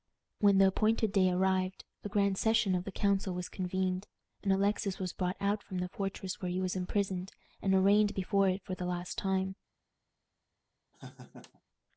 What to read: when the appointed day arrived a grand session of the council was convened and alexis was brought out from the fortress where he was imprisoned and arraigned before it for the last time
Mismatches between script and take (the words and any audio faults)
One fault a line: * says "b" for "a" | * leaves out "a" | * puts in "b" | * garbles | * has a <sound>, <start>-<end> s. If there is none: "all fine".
* has a laugh, 10.9-11.6 s